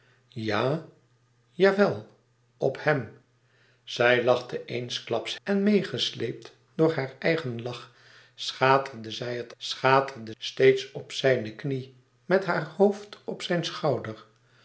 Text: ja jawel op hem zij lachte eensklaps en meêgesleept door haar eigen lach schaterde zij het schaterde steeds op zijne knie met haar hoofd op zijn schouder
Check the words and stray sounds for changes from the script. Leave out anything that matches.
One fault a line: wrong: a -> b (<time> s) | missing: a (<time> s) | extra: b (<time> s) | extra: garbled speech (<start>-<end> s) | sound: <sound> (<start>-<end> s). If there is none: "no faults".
no faults